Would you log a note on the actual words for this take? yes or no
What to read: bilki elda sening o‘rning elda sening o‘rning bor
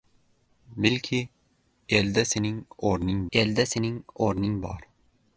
no